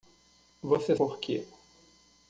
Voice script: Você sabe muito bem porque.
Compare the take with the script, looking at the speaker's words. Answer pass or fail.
fail